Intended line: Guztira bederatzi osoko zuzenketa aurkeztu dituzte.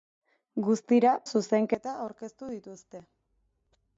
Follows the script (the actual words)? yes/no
no